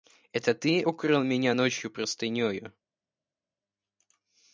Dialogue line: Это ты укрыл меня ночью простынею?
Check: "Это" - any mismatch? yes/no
no